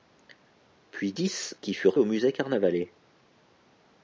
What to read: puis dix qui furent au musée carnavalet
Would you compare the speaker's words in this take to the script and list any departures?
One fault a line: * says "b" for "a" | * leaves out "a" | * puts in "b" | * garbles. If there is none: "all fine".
all fine